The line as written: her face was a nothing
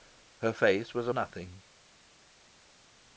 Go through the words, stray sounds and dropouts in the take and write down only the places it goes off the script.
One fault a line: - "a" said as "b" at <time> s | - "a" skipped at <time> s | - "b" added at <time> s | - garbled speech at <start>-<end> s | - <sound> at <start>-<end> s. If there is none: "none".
none